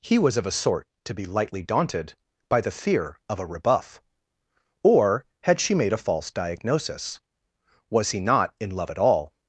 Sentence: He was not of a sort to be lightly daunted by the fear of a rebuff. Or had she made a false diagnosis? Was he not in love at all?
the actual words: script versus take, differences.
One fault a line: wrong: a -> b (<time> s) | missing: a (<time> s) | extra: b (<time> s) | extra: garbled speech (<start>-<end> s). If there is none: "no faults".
missing: not (0.3 s)